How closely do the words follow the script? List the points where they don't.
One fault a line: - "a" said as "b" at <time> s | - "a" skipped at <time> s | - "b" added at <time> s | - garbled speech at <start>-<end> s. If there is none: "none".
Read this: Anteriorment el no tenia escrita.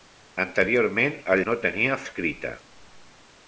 none